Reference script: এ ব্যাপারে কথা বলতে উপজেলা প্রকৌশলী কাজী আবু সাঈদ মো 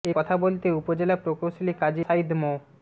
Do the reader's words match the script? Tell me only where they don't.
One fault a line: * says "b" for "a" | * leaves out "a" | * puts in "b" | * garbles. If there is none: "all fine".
* leaves out "ব্যাপারে"
* leaves out "আবু"